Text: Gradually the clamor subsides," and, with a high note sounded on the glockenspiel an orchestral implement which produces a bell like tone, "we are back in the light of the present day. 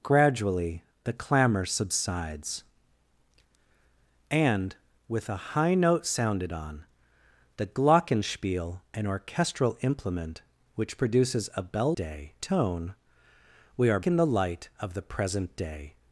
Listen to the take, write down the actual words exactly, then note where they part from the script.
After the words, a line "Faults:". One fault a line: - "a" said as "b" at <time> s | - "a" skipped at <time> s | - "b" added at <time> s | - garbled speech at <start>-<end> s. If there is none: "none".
Gradually the clamor subsides," and, with a high note sounded on the glockenspiel an orchestral implement which produces a bell day tone, "we are in the light of the present day.
Faults:
- "like" said as "day" at 11.9 s
- "back" skipped at 14.0 s